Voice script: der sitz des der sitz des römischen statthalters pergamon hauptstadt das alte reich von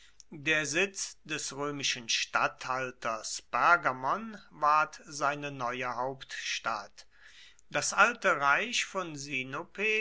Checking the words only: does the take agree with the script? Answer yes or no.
no